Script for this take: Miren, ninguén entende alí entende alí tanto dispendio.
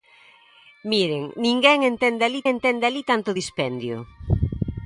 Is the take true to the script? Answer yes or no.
yes